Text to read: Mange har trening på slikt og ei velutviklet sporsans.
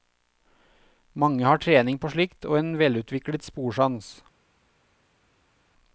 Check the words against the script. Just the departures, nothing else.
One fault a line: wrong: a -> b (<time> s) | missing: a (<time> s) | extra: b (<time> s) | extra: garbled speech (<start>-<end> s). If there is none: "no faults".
wrong: ei -> en (2.6 s)